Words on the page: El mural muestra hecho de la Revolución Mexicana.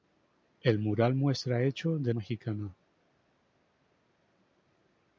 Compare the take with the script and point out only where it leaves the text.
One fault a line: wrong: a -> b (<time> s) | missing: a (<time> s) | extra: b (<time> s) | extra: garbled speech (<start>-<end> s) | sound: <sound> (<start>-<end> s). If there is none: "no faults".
missing: la Revolución (2.1 s)